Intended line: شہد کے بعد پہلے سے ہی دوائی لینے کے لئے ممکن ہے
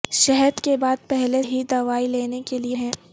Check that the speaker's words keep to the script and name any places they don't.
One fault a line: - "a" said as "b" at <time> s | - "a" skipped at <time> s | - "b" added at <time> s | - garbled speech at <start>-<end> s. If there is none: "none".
- "سے" skipped at 1.4 s
- "ممکن" skipped at 2.8 s